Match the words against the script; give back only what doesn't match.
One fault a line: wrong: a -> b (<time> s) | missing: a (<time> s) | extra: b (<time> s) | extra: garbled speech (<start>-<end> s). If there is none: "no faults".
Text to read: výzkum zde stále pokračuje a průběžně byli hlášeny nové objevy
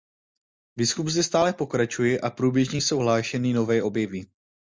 wrong: byli -> jsou (2.8 s)